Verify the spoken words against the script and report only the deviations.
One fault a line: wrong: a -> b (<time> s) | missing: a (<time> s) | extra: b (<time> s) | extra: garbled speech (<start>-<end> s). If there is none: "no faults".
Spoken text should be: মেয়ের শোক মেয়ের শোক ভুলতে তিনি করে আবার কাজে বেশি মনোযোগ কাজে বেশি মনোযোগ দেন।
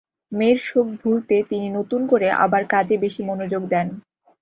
missing: মেয়ের শোক (0.9 s)
extra: নতুন (1.8 s)
missing: কাজে বেশি মনোযোগ (3.6 s)